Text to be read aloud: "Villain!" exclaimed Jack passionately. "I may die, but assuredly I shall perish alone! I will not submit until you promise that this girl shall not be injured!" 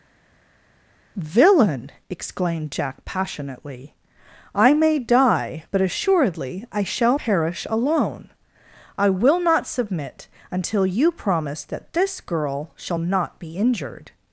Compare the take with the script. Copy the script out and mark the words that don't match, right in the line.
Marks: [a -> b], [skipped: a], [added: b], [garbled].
"Villain!" exclaimed Jack passionately. "I may die, but assuredly I shall perish alone! I will not submit until you promise that this girl shall not be injured!"